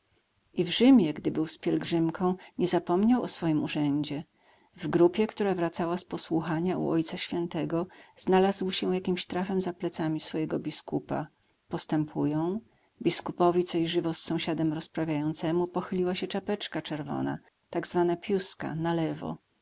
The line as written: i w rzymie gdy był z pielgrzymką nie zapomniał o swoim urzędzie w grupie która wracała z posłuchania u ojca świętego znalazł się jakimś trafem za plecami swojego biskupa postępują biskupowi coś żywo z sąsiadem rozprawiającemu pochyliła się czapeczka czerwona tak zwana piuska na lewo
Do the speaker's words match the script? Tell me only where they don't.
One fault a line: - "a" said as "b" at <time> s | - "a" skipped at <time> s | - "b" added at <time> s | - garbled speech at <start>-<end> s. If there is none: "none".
none